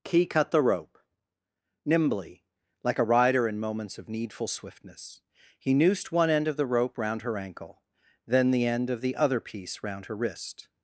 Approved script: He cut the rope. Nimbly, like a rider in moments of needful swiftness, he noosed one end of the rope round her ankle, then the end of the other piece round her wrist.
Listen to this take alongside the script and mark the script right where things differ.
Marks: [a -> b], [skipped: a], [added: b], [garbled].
[He -> Key] cut the rope. Nimbly, like a rider in moments of needful swiftness, he noosed one end of the rope round her ankle, then the end of the other piece round her wrist.